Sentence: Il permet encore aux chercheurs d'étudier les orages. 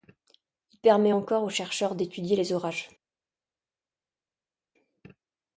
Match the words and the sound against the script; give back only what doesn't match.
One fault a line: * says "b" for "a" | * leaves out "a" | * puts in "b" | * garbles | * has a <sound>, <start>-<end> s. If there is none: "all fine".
all fine